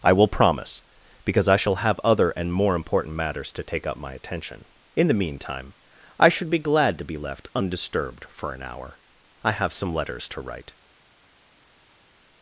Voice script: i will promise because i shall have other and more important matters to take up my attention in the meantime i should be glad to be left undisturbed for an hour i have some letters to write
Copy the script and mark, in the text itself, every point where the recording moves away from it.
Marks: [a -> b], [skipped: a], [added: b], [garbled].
i will promise because i shall have other and more important matters to take up my attention in the meantime i should be glad to be left undisturbed for an hour i have some letters to write